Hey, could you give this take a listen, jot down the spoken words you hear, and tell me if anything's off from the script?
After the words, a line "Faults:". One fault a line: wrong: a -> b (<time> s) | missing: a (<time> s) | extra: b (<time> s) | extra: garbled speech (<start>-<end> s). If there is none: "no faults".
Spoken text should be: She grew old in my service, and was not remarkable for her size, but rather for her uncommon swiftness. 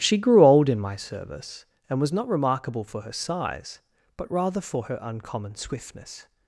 She grew old in my service, and was not remarkable for her size, but rather for her uncommon swiftness.
Faults:
no faults